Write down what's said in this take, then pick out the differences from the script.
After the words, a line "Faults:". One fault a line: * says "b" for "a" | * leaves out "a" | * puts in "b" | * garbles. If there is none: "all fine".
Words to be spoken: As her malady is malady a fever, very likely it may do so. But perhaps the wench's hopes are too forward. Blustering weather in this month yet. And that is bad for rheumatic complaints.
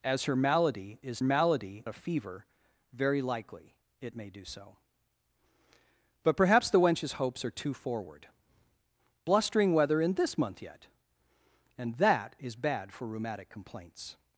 As her malady is malady a fever, very likely it may do so. But perhaps the wench's hopes are too forward. Blustering weather in this month yet. And that is bad for rheumatic complaints.
Faults:
all fine